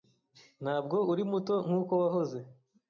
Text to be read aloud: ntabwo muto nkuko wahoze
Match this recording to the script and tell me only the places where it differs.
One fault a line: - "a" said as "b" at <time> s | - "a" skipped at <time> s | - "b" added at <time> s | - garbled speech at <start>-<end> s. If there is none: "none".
- "uri" added at 1.1 s